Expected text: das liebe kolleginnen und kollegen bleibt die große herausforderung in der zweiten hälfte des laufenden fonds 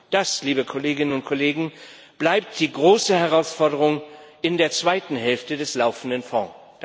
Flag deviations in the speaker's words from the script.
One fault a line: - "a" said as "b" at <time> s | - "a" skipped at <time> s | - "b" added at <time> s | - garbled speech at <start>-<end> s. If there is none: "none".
none